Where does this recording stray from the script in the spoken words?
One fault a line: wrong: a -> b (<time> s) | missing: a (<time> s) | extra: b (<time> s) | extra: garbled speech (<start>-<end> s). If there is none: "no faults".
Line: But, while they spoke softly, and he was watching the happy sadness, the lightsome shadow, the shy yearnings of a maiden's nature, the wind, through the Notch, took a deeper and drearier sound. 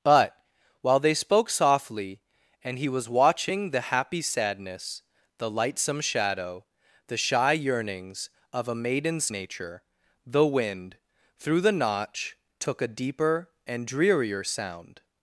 no faults